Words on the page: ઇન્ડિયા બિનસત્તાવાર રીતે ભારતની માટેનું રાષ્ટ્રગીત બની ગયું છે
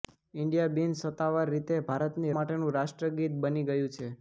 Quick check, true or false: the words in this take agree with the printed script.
true